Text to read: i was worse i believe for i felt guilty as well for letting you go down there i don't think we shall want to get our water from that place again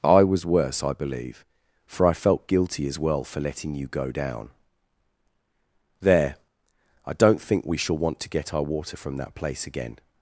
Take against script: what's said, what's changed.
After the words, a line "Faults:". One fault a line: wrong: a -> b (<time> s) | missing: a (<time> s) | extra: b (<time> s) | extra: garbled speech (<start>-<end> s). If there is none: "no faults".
i was worse i believe for i felt guilty as well for letting you go down there i don't think we shall want to get our water from that place again
Faults:
no faults